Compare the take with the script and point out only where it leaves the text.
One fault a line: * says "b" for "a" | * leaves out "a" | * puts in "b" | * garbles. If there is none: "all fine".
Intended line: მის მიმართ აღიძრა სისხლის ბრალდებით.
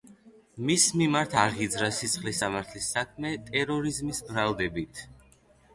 * puts in "სამართლის საქმე ტერორიზმის"